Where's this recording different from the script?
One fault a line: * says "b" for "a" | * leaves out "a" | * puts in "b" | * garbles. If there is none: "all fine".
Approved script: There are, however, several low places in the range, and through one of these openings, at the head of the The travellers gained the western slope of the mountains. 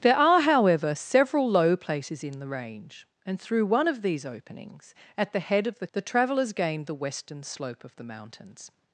all fine